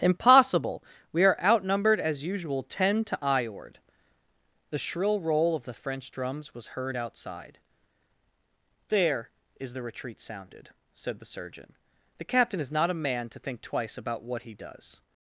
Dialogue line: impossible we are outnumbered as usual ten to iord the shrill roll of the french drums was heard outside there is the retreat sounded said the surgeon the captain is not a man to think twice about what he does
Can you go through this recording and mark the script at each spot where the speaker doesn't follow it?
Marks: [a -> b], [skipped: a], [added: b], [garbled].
impossible we are outnumbered as usual ten to iord the shrill roll of the french drums was heard outside there is the retreat sounded said the surgeon the captain is not a man to think twice about what he does